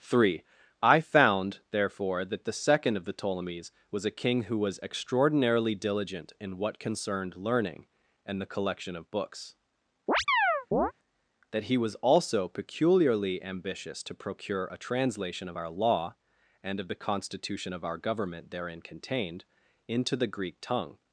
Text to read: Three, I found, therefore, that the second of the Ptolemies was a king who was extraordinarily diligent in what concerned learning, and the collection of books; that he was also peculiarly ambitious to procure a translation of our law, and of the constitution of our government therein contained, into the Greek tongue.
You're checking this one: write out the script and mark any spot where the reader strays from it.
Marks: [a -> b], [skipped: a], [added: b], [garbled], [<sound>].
Three, I found, therefore, that the second of the Ptolemies was a king who was extraordinarily diligent in what concerned learning, and the collection of books; [chirp] that he was also peculiarly ambitious to procure a translation of our law, and of the constitution of our government therein contained, into the Greek tongue.